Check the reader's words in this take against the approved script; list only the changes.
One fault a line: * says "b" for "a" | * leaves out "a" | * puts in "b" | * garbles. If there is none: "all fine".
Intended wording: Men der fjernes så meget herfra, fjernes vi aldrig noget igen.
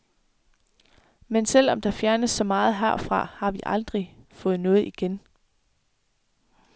* puts in "selv om"
* says "har" for "fjernes"
* puts in "fået"